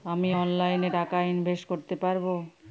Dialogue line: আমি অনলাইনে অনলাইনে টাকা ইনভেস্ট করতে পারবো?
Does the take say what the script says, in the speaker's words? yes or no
no